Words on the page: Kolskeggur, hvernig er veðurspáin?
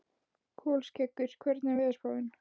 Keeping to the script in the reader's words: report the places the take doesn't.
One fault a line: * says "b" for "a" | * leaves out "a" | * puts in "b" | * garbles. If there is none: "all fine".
all fine